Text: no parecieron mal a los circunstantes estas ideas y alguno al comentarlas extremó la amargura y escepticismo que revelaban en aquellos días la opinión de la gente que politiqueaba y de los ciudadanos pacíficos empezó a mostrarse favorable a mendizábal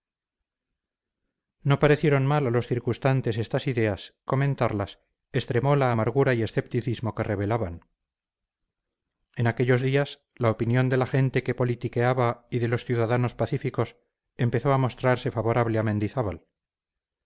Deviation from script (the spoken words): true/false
true